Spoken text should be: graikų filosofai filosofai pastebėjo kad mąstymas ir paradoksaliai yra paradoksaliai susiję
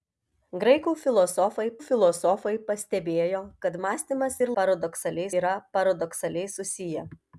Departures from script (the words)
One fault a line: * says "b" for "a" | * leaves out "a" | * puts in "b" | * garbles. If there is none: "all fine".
all fine